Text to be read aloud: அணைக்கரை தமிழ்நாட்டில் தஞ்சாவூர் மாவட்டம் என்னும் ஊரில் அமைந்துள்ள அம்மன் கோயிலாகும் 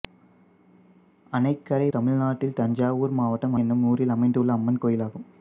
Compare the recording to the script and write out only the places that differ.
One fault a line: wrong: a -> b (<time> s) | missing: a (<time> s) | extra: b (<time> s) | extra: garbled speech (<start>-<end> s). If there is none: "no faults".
no faults